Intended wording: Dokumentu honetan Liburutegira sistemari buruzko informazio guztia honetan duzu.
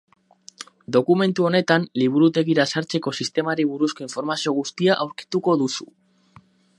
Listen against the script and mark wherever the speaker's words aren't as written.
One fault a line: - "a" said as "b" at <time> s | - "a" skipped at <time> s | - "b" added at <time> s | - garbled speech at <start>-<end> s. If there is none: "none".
- "sartzeko" added at 2.7 s
- "honetan" said as "aurkituko" at 5.0 s